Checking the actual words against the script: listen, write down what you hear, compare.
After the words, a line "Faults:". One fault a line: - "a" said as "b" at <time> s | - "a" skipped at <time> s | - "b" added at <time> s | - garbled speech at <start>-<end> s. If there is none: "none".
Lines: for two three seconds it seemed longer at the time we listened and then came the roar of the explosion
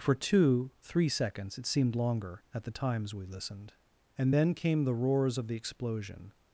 for two three seconds it seemed longer at the times we listened and then came the roars of the explosion
Faults:
- "time" said as "times" at 2.7 s
- "roar" said as "roars" at 4.9 s